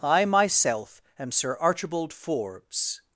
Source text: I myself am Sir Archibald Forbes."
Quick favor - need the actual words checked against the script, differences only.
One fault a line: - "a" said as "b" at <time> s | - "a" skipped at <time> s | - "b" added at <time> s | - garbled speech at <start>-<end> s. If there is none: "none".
none